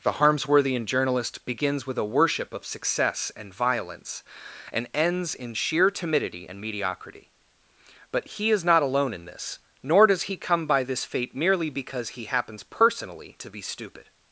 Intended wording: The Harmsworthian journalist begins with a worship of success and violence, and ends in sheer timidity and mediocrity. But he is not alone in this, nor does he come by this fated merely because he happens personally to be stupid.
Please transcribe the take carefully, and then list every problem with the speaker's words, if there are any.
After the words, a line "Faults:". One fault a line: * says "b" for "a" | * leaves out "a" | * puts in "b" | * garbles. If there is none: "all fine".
The Harmsworthian journalist begins with a worship of success and violence, and ends in sheer timidity and mediocrity. But he is not alone in this, nor does he come by this fate merely because he happens personally to be stupid.
Faults:
* says "fate" for "fated"